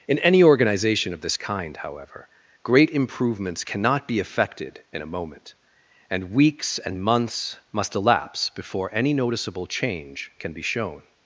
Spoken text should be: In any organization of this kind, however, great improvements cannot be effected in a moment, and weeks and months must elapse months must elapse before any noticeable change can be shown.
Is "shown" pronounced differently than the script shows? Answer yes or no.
no